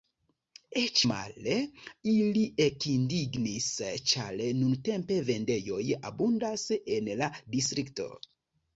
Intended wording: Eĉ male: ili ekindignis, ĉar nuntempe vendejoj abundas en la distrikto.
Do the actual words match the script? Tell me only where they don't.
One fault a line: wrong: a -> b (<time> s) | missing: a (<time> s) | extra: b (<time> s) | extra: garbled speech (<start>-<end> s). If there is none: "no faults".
no faults